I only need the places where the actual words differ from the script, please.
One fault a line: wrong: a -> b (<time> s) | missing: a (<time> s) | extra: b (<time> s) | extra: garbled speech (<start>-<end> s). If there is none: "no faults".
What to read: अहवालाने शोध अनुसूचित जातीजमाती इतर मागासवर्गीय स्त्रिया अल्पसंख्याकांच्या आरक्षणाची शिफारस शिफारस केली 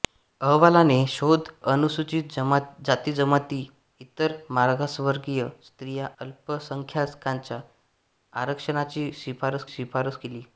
no faults